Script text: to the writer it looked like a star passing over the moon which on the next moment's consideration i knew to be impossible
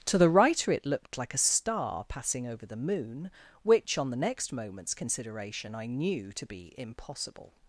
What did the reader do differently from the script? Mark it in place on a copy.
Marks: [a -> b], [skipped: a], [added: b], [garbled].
to the writer it looked like a star passing over the moon which on the next moment's consideration i knew to be impossible